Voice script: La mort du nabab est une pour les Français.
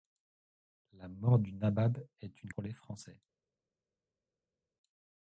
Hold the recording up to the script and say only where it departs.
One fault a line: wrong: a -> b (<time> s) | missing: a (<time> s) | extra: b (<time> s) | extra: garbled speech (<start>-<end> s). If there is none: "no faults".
no faults